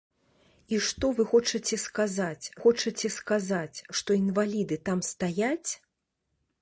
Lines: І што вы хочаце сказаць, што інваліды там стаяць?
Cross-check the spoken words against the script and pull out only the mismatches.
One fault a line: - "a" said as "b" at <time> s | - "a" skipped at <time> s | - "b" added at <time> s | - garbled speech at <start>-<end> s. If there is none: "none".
- "хочаце сказаць" added at 2.6 s